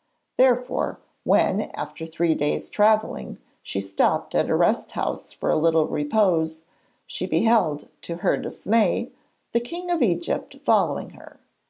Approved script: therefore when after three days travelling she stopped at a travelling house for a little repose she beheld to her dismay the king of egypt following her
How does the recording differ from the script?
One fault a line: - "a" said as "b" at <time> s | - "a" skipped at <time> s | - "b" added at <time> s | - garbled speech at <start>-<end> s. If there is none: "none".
- "travelling" said as "rest" at 4.6 s